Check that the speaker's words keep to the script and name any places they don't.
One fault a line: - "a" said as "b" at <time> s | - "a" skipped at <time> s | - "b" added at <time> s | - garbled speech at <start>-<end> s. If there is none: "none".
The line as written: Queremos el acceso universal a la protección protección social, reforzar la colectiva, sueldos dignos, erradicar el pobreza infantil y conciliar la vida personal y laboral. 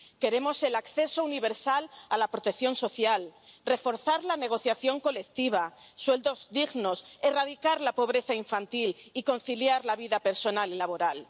- "protección" skipped at 2.8 s
- "negociación" added at 4.4 s
- "el" said as "la" at 7.8 s